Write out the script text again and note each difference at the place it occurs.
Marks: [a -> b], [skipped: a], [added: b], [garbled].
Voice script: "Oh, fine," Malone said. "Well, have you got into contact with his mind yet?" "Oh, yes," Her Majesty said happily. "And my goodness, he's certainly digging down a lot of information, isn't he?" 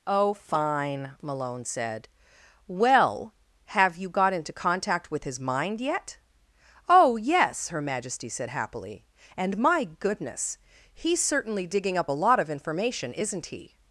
"Oh, fine," Malone said. "Well, have you got into contact with his mind yet?" "Oh, yes," Her Majesty said happily. "And my goodness, he's certainly digging [down -> up] a lot of information, isn't he?"